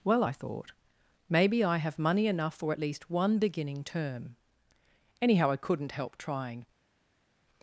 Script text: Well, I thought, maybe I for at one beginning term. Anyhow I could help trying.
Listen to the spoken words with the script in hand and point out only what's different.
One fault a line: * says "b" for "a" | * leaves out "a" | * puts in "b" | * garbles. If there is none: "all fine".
* puts in "have money enough"
* puts in "least"
* says "couldn't" for "could"